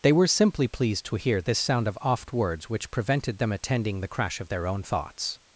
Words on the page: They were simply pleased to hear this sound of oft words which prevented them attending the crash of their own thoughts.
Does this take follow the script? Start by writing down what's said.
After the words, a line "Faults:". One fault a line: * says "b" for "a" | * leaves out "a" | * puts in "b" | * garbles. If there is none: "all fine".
They were simply pleased to hear this sound of oft words which prevented them attending the crash of their own thoughts.
Faults:
all fine